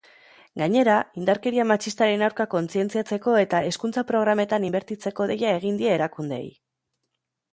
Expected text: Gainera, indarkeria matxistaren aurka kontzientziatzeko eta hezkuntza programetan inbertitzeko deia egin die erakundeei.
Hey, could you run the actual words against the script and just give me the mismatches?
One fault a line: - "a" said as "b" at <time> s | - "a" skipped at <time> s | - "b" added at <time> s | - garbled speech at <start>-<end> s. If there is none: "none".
none